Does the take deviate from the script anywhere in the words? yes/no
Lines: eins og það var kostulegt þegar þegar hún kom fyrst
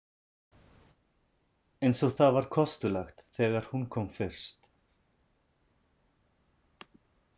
yes